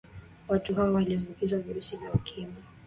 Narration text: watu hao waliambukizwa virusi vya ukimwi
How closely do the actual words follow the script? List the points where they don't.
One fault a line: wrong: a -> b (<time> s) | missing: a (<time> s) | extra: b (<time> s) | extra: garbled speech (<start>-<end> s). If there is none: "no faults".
no faults